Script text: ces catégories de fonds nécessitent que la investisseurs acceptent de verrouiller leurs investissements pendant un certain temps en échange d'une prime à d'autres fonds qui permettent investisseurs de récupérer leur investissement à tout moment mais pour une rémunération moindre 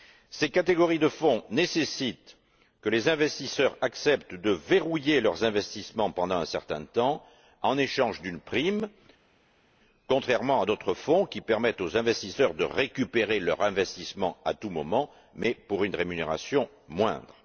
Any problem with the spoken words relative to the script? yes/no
yes